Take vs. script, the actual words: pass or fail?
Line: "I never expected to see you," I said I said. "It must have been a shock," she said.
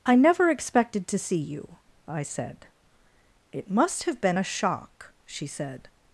fail